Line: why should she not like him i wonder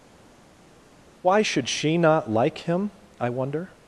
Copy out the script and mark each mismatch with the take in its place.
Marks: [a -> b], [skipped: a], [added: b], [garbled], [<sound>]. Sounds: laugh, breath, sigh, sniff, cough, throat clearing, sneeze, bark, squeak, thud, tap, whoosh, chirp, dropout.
why should she not like him i wonder